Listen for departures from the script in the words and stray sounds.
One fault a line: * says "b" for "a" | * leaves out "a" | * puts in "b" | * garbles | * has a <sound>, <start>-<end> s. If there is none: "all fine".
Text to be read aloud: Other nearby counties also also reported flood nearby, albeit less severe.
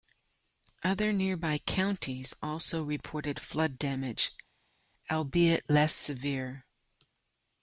* leaves out "also"
* says "damage" for "nearby"